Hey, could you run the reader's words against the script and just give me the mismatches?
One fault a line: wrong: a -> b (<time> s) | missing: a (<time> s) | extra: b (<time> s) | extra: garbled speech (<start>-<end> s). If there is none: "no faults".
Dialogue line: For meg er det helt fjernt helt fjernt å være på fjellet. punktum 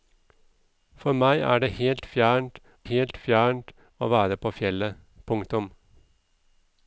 no faults